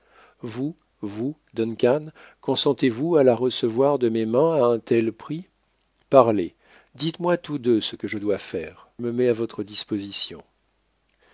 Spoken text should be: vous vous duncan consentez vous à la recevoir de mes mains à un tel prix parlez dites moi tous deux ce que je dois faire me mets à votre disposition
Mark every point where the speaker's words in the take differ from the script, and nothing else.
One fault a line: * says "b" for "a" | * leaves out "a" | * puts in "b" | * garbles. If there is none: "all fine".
all fine